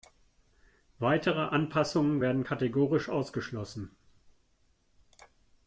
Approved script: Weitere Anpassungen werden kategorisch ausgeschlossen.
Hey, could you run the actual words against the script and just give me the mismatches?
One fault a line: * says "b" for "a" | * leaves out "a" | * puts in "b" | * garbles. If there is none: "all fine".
all fine